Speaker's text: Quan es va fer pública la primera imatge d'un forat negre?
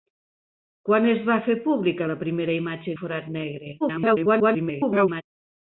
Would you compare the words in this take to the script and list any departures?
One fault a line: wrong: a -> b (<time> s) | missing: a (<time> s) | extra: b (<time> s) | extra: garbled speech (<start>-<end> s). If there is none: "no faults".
missing: d'un (2.9 s)
extra: garbled speech (3.8-5.2 s)